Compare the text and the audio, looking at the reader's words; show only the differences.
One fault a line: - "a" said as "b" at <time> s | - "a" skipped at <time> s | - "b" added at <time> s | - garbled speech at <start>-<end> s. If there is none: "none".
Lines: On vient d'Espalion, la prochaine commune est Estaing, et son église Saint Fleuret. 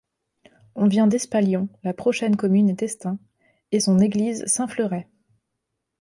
none